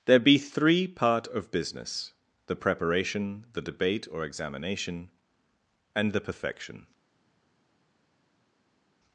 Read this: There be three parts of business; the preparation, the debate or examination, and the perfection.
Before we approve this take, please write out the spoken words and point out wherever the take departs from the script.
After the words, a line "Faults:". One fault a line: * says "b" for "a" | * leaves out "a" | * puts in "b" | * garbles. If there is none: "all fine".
There be three part of business; the preparation, the debate or examination, and the perfection.
Faults:
* says "part" for "parts"